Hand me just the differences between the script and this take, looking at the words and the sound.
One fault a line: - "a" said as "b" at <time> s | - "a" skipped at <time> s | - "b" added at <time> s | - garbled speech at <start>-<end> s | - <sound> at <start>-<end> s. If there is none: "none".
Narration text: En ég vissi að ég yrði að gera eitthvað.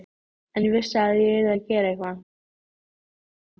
none